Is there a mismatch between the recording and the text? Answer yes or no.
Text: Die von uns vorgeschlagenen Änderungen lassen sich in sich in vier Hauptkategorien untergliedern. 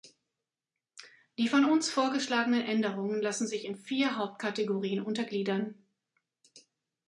yes